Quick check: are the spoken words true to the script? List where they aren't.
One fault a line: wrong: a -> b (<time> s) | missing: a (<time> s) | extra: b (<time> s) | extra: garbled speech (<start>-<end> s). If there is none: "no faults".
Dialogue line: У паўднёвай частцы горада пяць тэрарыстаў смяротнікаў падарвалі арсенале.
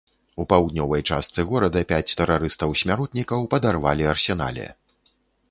no faults